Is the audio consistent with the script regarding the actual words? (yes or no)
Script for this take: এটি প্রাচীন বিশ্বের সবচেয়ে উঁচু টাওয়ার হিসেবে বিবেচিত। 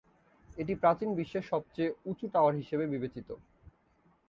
yes